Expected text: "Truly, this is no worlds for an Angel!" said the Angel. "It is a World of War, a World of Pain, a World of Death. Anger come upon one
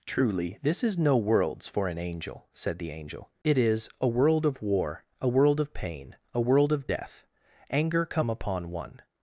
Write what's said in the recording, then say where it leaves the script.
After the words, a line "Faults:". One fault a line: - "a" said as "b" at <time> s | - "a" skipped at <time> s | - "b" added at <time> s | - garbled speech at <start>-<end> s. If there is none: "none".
"Truly, this is no worlds for an Angel!" said the Angel. "It is a World of War, a World of Pain, a World of Death. Anger come upon one
Faults:
none